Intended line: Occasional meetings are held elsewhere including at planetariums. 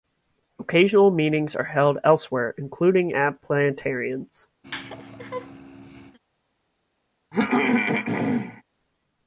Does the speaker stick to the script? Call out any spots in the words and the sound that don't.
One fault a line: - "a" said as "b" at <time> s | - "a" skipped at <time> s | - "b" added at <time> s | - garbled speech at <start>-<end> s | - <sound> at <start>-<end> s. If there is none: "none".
- laugh at 4.6-6.2 s
- throat clearing at 7.3-8.6 s